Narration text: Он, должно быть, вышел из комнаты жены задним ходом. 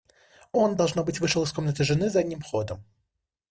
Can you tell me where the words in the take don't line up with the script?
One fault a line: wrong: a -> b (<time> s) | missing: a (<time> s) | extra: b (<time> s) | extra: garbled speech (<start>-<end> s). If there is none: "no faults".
no faults